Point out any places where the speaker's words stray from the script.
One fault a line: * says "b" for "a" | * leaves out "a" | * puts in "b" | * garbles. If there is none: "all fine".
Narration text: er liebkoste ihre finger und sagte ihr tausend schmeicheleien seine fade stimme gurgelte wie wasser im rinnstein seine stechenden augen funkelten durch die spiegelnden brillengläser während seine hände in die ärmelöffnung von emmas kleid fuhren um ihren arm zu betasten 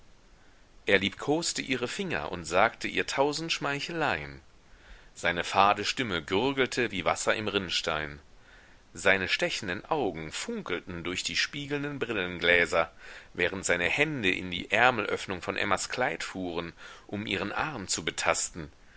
all fine